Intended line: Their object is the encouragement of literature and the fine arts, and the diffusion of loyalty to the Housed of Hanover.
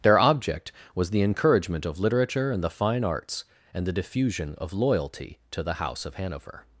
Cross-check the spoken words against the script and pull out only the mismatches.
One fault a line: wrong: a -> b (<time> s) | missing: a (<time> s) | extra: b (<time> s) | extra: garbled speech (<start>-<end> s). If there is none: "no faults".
wrong: is -> was (0.9 s)
wrong: Housed -> House (5.8 s)